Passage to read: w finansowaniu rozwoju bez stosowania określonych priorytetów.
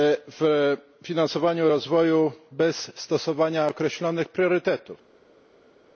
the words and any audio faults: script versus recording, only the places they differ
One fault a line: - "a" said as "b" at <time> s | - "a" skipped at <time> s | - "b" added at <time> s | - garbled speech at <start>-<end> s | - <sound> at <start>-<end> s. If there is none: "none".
none